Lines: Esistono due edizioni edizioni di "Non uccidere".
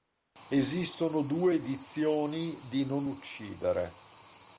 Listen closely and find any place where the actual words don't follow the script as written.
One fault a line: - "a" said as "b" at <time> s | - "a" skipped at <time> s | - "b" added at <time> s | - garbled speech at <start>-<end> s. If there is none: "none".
- "edizioni" skipped at 2.6 s